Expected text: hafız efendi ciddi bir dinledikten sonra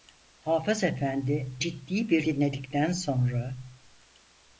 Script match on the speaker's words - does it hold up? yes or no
yes